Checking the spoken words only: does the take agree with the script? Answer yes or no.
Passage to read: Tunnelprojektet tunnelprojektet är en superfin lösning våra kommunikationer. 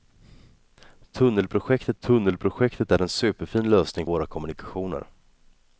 yes